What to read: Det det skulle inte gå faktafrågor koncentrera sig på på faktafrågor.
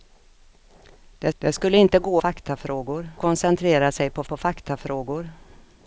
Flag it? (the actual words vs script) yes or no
no